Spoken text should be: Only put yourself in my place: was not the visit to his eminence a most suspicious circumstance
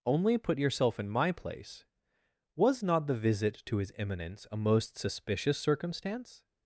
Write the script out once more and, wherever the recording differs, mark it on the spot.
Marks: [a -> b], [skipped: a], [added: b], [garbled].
Only put yourself in my place: was not the visit to his eminence a most suspicious circumstance